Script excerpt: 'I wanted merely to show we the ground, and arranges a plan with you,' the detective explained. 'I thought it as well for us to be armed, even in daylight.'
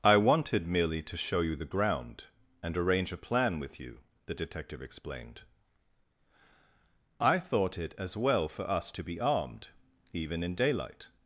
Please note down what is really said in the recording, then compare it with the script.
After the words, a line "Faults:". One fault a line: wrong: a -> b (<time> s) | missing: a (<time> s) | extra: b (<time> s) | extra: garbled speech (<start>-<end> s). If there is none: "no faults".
'I wanted merely to show you the ground, and arrange a plan with you,' the detective explained. 'I thought it as well for us to be armed, even in daylight.'
Faults:
wrong: we -> you (1.4 s)
wrong: arranges -> arrange (2.8 s)